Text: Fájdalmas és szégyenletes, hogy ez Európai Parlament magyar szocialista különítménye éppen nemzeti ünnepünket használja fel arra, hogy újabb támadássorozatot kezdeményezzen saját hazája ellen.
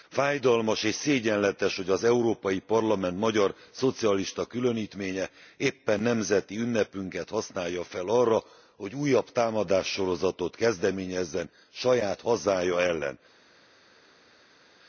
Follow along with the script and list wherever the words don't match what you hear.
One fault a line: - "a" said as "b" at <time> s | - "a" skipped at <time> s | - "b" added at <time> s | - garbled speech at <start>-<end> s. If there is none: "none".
- "ez" said as "az" at 1.9 s